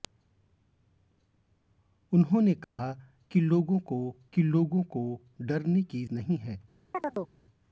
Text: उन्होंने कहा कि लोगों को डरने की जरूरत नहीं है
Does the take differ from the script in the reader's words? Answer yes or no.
yes